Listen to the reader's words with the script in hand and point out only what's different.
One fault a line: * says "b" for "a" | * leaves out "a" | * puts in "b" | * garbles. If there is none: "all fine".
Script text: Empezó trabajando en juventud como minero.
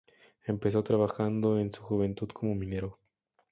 * puts in "su"